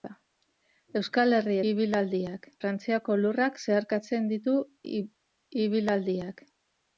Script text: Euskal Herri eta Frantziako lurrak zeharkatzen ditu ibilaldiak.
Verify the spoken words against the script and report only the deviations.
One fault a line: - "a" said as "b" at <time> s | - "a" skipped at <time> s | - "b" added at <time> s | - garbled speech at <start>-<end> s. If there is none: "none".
- "eta" said as "ibilaldiak" at 1.7 s